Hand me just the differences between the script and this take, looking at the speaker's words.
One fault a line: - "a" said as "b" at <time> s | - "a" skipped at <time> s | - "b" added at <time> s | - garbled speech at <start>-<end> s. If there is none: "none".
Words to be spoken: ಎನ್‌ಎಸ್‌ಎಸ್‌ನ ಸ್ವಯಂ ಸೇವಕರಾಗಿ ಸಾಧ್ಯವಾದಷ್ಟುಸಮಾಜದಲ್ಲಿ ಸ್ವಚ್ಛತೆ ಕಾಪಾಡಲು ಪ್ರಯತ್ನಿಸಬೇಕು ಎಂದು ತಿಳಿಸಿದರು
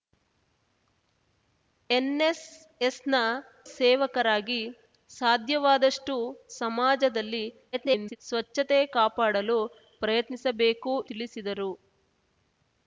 - "ಸ್ವಯಂ" skipped at 3.1 s
- garbled speech at 7.7-8.2 s
- "ಎಂದು" skipped at 11.0 s